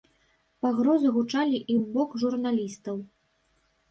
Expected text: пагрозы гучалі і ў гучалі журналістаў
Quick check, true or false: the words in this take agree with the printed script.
false